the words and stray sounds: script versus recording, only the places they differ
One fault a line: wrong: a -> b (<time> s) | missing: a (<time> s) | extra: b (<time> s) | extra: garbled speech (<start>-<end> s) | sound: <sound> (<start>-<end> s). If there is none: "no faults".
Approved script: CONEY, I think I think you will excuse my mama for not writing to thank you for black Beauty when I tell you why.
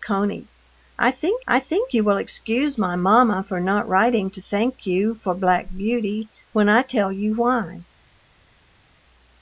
no faults